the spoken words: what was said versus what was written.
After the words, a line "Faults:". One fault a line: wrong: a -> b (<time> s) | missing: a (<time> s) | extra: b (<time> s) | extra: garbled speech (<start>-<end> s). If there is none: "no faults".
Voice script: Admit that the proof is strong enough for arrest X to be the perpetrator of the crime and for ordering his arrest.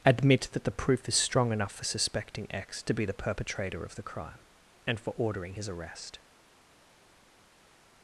Admit that the proof is strong enough for suspecting X to be the perpetrator of the crime and for ordering his arrest.
Faults:
wrong: arrest -> suspecting (1.8 s)